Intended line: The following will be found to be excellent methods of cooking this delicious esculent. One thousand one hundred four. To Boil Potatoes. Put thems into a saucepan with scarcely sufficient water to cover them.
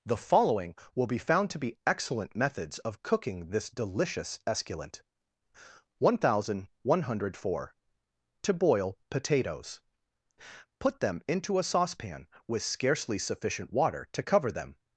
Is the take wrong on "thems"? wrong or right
wrong